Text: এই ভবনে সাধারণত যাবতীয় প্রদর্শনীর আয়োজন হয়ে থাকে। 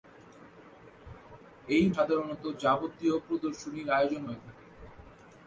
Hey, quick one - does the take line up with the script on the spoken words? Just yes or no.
no